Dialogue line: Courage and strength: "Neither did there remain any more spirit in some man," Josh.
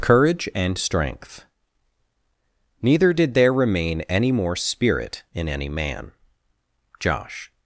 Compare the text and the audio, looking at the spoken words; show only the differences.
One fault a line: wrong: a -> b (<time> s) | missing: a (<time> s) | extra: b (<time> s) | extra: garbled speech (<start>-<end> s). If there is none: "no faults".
wrong: some -> any (5.5 s)